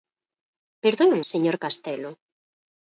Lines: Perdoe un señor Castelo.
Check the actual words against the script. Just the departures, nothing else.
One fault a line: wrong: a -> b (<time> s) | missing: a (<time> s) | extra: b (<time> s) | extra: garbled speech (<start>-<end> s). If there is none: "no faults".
no faults